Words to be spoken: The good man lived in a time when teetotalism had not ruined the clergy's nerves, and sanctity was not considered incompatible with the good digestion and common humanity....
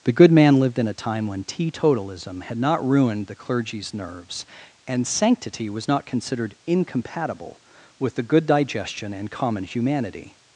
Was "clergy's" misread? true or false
false